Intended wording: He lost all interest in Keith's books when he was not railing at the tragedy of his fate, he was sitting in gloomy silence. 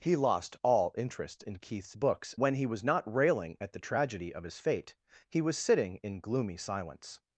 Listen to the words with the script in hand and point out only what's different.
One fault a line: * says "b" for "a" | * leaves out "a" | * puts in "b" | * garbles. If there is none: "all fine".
all fine